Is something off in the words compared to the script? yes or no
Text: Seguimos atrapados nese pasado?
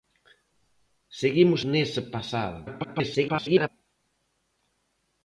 yes